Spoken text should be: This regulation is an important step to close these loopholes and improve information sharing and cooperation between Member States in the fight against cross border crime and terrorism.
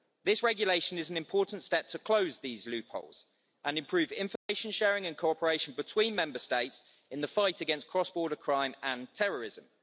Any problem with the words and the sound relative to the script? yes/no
yes